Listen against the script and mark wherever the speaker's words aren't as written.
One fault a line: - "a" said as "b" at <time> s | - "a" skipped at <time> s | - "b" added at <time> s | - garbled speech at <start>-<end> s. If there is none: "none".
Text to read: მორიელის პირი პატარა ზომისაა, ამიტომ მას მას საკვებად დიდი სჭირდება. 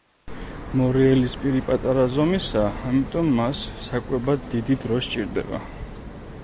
- "მას" skipped at 3.6 s
- "დრო" added at 4.9 s